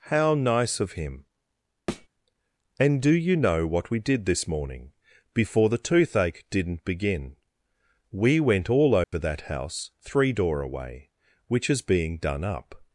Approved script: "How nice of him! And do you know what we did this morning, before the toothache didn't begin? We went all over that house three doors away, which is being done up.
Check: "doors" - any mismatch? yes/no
yes